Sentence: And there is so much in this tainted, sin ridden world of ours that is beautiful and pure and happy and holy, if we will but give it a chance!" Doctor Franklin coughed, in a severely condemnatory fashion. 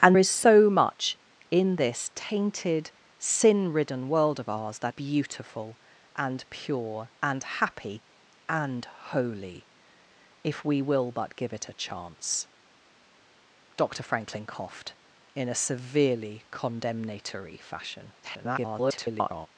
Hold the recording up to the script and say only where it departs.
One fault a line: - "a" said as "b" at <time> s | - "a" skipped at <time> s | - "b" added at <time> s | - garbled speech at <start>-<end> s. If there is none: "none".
- "there" skipped at 0.2 s
- "is" skipped at 4.9 s
- garbled speech at 18.2-19.5 s